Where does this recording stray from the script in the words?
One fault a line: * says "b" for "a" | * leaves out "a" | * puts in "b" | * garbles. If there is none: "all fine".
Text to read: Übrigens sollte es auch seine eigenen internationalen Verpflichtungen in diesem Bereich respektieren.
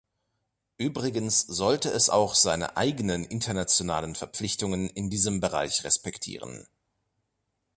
all fine